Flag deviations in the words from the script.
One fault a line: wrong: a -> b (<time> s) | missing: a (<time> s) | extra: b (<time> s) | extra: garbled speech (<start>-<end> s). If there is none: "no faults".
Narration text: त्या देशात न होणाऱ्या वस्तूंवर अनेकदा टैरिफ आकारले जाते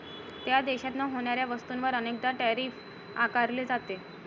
no faults